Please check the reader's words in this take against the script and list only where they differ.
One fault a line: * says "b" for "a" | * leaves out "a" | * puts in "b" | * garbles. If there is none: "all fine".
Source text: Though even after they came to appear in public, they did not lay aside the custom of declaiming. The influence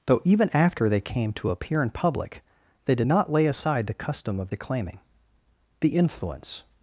all fine